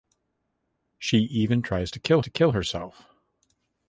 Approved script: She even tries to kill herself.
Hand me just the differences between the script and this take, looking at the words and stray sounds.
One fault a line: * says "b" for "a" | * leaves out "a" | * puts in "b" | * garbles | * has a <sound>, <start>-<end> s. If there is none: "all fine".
* puts in "to kill"